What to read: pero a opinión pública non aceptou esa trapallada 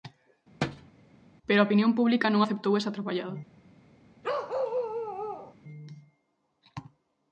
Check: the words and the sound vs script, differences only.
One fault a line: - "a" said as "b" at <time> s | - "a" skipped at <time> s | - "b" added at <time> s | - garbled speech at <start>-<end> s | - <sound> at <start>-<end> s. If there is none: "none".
- thud at 0.6-0.9 s
- bark at 4.2-5.6 s